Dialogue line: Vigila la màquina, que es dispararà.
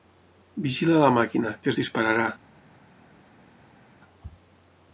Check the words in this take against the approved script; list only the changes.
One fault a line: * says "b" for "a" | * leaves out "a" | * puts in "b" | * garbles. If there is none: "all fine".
all fine